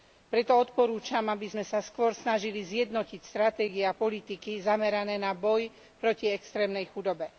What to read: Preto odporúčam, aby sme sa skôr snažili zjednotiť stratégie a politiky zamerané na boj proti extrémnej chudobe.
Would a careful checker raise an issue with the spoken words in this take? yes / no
no